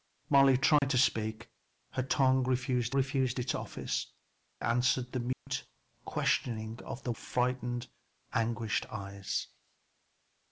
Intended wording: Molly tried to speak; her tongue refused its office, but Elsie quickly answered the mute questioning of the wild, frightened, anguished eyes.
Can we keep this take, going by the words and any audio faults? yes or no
no